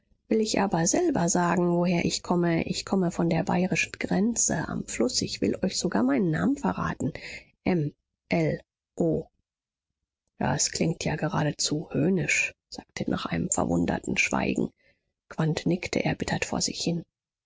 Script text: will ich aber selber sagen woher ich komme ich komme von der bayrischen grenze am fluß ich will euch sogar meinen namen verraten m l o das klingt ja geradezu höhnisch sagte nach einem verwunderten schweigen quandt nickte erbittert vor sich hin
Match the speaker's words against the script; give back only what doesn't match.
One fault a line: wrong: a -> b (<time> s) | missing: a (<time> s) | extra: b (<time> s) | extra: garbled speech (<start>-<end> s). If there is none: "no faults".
no faults